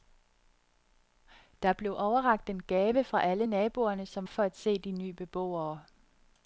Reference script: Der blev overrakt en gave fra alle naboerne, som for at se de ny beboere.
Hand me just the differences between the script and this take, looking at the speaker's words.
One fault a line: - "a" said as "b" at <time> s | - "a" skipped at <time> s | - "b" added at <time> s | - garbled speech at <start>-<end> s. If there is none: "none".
none